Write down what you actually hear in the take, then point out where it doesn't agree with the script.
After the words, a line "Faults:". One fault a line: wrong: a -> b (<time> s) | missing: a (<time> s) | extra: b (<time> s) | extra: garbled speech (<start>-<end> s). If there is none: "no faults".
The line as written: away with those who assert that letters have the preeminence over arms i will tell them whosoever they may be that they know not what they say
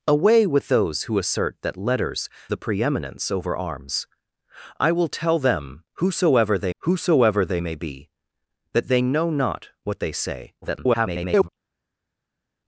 away with those who assert that letters the preeminence over arms i will tell them whosoever they whosoever they may be that they know not what they say [garbled]
Faults:
missing: have (2.3 s)
extra: whosoever they (6.8 s)
extra: garbled speech (10.6-11.5 s)